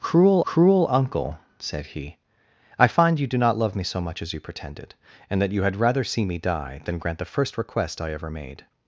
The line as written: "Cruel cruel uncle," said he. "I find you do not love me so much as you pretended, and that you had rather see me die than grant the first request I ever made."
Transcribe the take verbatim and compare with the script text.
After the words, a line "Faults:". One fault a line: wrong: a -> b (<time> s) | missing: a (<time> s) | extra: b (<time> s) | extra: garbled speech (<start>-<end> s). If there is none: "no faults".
"Cruel cruel uncle," said he. "I find you do not love me so much as you pretended, and that you had rather see me die than grant the first request I ever made."
Faults:
no faults